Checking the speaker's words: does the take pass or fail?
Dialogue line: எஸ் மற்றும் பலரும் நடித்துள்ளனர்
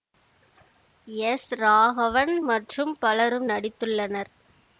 fail